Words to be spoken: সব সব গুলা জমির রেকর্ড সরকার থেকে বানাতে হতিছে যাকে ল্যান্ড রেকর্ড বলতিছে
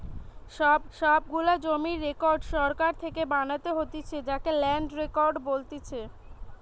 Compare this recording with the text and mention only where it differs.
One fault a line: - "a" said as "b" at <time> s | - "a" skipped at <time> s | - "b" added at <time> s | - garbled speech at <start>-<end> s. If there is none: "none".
none